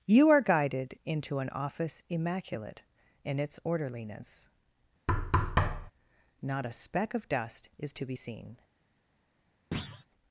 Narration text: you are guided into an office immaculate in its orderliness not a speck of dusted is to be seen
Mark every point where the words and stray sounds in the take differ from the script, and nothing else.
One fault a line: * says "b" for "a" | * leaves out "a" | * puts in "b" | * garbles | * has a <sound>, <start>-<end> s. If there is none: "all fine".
* has a thud, 5.1-5.9 s
* says "dust" for "dusted"
* has a thud, 9.7-10.1 s